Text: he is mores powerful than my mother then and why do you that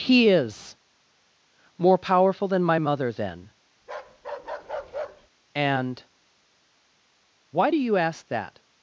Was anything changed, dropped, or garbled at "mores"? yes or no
yes